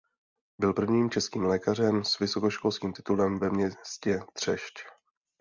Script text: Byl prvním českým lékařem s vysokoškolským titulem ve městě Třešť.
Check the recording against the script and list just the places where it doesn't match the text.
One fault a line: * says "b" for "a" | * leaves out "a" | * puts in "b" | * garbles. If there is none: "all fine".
all fine